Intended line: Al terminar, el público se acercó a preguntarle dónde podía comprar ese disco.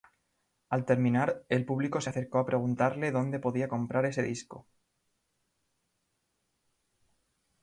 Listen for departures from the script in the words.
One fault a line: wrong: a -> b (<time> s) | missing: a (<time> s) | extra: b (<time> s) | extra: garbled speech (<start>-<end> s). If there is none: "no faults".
no faults